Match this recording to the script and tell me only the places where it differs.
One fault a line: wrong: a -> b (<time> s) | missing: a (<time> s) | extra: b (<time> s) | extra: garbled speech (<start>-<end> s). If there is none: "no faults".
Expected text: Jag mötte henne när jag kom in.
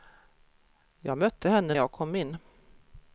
missing: när (1.8 s)